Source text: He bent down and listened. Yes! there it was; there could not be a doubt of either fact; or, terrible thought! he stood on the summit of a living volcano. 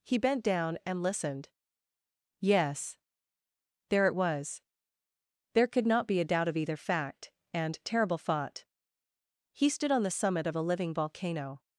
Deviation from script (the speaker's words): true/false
true